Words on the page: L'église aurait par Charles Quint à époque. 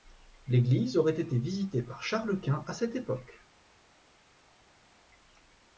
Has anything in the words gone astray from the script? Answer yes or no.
yes